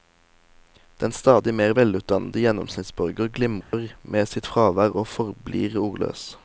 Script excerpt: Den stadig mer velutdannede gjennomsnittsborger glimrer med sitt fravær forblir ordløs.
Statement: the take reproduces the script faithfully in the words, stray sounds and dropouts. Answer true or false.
false